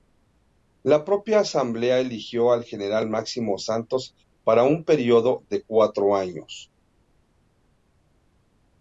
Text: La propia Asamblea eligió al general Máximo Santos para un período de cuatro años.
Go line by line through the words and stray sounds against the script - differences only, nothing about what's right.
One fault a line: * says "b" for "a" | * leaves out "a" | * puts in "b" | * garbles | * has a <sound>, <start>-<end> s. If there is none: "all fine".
all fine